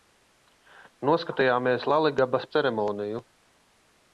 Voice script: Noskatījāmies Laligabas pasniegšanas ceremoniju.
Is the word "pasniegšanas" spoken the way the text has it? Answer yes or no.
no